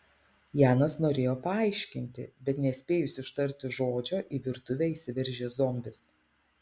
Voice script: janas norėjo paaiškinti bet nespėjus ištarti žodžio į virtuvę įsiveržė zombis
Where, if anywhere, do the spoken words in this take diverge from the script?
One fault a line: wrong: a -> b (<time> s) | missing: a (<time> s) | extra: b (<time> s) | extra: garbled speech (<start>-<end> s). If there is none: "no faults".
no faults